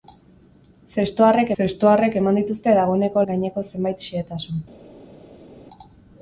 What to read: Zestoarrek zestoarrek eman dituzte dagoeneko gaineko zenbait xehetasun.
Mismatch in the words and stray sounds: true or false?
false